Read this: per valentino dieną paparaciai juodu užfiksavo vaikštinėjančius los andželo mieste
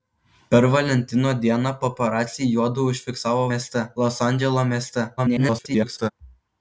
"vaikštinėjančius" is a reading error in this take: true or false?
true